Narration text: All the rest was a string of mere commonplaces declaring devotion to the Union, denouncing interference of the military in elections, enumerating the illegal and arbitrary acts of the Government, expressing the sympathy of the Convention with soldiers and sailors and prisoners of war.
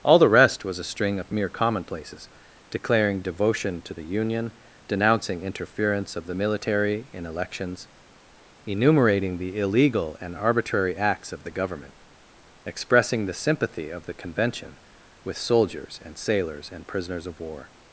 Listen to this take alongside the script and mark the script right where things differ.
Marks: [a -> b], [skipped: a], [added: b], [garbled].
All the rest was a string of mere commonplaces declaring devotion to the Union, denouncing interference of the military in elections, enumerating the illegal and arbitrary acts of the Government, expressing the sympathy of the Convention with soldiers and sailors and prisoners of war.